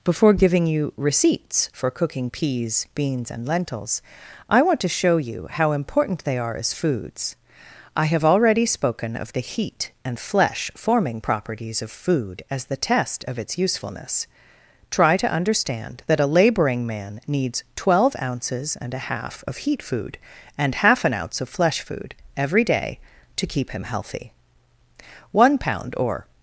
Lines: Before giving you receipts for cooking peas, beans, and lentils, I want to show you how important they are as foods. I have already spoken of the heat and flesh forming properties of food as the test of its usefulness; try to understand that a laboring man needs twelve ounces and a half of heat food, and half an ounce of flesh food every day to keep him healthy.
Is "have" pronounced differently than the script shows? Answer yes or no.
no